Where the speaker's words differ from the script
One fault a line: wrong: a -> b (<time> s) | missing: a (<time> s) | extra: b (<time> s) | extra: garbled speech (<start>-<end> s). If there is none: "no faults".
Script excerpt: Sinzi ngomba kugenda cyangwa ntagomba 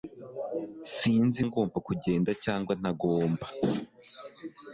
no faults